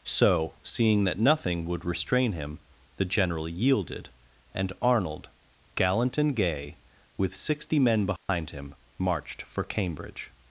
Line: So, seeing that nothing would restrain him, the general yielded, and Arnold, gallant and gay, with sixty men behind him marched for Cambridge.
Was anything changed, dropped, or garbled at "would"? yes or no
no